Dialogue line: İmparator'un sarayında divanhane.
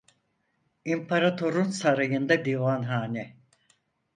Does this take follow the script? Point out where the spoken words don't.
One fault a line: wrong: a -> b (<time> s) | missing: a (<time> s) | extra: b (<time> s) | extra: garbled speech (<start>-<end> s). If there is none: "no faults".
no faults